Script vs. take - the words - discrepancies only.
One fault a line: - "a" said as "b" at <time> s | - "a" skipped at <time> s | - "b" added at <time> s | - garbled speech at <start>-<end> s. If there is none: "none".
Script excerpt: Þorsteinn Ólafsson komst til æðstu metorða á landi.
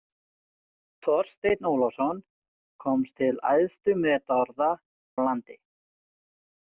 none